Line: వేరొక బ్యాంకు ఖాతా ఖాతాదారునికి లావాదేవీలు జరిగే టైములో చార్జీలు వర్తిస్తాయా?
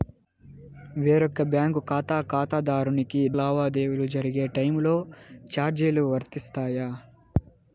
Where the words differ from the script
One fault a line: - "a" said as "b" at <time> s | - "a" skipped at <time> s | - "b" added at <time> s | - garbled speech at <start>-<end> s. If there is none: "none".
none